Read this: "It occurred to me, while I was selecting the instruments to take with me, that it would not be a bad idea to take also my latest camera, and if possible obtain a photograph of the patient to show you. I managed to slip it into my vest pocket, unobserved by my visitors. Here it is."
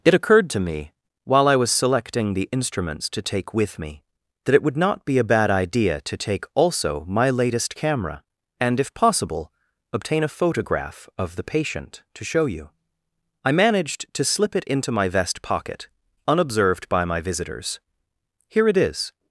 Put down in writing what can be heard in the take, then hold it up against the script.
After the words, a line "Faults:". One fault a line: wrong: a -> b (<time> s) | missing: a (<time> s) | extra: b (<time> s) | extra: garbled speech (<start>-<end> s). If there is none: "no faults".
"It occurred to me, while I was selecting the instruments to take with me, that it would not be a bad idea to take also my latest camera, and if possible obtain a photograph of the patient to show you. I managed to slip it into my vest pocket, unobserved by my visitors. Here it is."
Faults:
no faults